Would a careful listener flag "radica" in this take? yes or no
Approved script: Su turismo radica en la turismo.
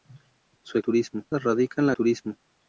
no